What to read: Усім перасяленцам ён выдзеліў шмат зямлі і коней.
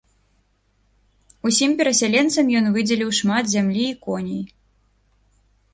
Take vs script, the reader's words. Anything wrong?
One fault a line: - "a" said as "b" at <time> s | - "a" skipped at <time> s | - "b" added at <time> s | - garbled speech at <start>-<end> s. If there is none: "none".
none